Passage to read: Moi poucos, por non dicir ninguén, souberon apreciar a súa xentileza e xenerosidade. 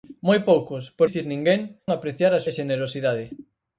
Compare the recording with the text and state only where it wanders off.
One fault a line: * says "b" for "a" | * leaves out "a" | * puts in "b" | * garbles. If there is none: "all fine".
* leaves out "non"
* leaves out "souberon"
* leaves out "súa xentileza"